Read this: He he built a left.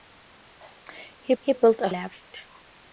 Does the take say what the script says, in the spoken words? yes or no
yes